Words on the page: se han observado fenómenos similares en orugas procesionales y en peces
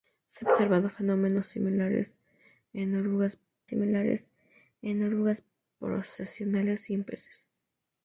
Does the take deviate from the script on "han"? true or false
true